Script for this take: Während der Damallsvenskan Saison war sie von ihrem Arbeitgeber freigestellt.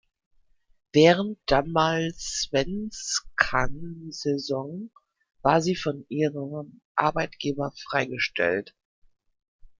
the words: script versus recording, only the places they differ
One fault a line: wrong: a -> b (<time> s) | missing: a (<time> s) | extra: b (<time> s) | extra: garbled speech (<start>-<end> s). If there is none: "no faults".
missing: der (1.4 s)